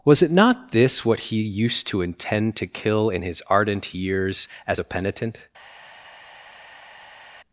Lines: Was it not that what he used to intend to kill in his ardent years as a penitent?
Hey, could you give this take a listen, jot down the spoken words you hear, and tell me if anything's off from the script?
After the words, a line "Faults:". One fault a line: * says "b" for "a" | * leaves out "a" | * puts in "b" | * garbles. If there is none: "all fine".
Was it not this what he used to intend to kill in his ardent years as a penitent?
Faults:
* says "this" for "that"